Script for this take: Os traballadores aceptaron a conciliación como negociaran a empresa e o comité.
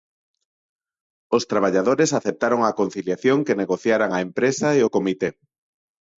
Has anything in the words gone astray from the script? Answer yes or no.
yes